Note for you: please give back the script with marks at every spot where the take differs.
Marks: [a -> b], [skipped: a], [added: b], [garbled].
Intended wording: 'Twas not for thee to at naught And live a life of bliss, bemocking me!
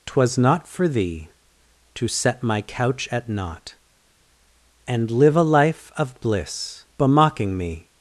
'Twas not for thee to [added: set my couch] at naught And live a life of bliss, bemocking me!